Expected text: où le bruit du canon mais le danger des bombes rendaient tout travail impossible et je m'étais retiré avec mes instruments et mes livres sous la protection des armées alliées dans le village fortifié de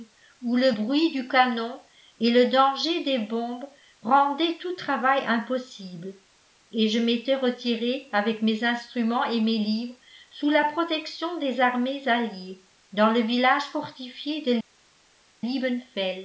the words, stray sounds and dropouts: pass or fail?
fail